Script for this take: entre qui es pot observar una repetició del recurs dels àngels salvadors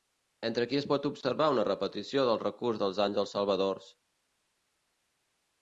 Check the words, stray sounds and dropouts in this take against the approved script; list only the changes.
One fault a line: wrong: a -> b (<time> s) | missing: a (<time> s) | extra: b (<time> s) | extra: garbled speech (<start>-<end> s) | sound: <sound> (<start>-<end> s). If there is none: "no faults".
no faults